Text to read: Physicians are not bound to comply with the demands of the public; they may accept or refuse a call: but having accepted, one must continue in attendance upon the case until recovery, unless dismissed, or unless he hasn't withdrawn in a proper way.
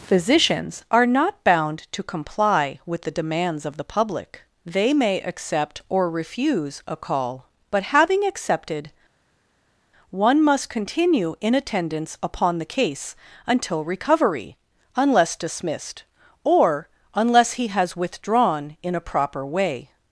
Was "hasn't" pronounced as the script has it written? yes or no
no